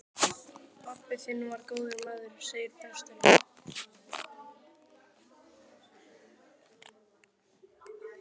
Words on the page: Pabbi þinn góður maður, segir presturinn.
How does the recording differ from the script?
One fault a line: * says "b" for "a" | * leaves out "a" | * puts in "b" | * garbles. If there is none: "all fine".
* puts in "var"